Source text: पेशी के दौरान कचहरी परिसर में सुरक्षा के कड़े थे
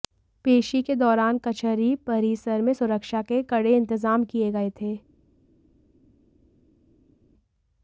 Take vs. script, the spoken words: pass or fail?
fail